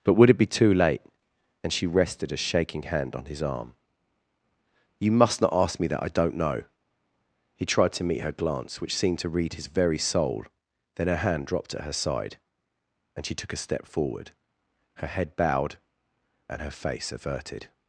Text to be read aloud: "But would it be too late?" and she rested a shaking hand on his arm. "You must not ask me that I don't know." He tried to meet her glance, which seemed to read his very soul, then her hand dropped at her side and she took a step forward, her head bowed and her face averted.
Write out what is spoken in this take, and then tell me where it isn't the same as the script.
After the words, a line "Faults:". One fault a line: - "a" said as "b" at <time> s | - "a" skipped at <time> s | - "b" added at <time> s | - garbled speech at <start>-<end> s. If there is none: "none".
"But would it be too late?" and she rested a shaking hand on his arm. "You must not ask me that I don't know." He tried to meet her glance, which seemed to read his very soul, then her hand dropped at her side and she took a step forward, her head bowed and her face averted.
Faults:
none